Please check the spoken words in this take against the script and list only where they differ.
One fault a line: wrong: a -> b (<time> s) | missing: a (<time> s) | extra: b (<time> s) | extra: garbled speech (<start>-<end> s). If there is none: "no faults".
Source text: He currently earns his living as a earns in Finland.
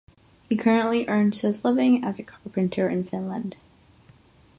wrong: earns -> carpenter (2.2 s)